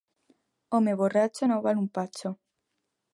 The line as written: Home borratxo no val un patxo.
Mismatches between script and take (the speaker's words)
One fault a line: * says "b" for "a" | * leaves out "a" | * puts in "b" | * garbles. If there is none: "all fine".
all fine